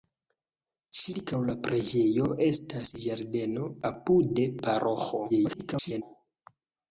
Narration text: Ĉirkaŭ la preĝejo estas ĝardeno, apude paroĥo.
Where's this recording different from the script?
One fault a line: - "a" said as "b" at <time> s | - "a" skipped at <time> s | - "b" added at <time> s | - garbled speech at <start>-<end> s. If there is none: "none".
- garbled speech at 5.3-6.0 s